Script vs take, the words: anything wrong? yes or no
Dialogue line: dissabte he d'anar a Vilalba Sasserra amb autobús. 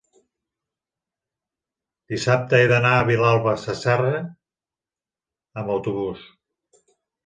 no